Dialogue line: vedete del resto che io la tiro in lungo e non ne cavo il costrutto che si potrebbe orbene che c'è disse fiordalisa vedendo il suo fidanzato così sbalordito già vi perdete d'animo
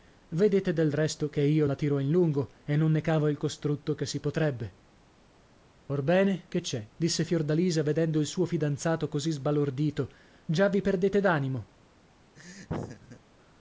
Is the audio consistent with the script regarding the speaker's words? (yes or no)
yes